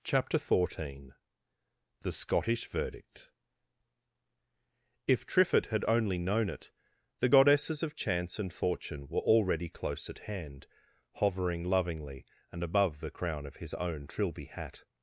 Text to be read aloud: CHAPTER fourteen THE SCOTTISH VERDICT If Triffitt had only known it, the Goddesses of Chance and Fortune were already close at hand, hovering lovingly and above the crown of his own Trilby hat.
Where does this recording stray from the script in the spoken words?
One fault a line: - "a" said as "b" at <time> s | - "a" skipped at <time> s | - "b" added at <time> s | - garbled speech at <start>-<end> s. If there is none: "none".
none